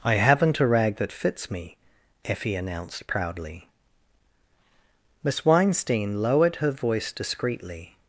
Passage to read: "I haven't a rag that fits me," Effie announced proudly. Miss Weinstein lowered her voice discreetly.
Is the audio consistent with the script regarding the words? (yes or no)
yes